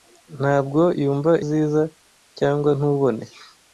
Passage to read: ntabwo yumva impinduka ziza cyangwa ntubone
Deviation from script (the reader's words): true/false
true